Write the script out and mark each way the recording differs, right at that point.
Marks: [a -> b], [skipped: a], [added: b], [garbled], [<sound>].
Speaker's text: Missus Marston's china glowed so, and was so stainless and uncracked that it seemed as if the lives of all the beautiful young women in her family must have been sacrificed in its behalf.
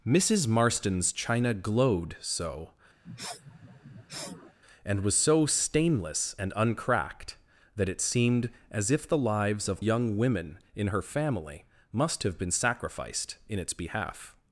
Missus Marston's china glowed so, [sniff] and was so stainless and uncracked that it seemed as if the lives of [skipped: all the beautiful] young women in her family must have been sacrificed in its behalf.